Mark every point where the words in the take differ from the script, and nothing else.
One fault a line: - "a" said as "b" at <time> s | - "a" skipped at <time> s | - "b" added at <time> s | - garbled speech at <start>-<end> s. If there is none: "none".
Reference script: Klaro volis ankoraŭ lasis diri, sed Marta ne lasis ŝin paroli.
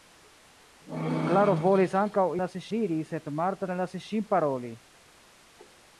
none